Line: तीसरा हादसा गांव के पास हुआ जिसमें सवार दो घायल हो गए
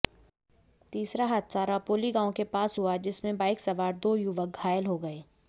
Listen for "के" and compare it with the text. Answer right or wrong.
right